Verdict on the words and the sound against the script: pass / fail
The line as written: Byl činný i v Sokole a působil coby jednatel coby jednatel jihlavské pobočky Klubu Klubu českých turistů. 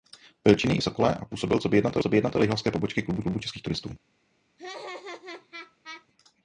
fail